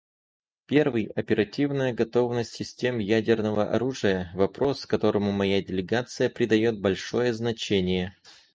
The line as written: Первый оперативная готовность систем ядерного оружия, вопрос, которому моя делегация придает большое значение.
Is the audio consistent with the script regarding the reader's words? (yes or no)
yes